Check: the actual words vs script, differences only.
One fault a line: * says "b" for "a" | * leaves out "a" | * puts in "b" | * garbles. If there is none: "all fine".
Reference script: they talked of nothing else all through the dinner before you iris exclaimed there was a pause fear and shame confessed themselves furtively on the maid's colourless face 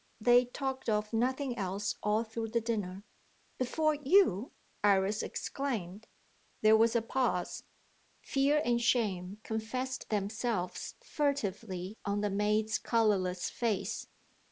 all fine